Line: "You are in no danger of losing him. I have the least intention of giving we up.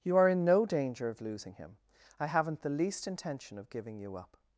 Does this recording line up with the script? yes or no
no